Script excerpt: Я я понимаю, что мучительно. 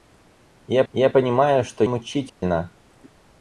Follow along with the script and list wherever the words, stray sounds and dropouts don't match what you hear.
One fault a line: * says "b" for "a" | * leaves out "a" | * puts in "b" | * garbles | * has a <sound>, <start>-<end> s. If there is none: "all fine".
* has a dropout, 2.3-2.4 s